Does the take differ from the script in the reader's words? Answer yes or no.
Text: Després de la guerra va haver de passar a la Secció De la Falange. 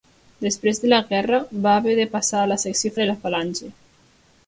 no